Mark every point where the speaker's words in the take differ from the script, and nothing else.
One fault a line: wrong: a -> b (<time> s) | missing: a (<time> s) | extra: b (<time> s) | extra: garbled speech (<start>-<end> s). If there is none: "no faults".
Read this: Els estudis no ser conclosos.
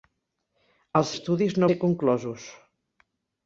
no faults